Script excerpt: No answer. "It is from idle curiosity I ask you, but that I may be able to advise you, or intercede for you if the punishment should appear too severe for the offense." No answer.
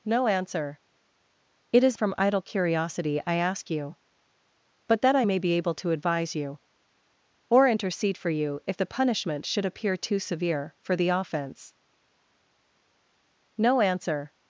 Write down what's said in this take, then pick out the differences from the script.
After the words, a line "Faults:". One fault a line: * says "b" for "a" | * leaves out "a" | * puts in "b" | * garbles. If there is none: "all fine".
No answer. "It is from idle curiosity I ask you, but that I may be able to advise you, or intercede for you if the punishment should appear too severe for the offense." No answer.
Faults:
all fine